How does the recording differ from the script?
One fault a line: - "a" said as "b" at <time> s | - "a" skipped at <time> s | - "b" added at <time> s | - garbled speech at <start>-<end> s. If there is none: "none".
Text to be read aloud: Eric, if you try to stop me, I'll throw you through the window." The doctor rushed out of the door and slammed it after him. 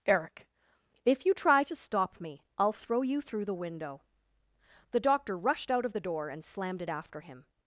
none